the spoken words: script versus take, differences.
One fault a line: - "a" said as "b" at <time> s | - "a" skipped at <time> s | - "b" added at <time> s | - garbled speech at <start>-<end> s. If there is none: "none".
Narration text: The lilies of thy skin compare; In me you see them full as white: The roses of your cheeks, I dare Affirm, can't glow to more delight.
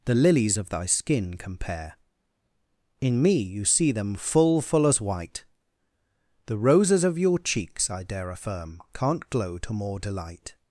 - "full" added at 4.6 s